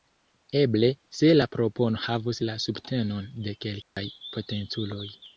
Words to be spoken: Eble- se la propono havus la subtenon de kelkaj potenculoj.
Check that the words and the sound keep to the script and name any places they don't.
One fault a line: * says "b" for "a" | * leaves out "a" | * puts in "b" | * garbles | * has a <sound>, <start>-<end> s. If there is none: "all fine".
* has a dropout, 3.8-4.0 s